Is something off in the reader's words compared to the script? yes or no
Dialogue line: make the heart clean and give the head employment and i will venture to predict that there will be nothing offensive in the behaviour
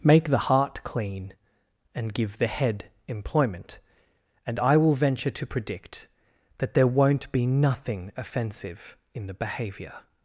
yes